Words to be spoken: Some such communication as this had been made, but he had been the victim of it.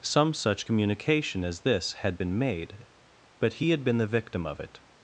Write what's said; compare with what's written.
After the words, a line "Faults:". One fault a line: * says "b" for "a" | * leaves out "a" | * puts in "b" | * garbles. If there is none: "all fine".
Some such communication as this had been made, but he had been the victim of it.
Faults:
all fine